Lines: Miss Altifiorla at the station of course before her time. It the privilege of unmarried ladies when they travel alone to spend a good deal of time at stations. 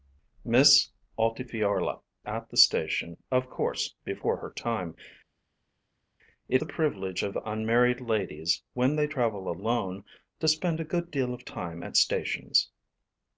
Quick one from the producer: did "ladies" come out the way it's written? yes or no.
yes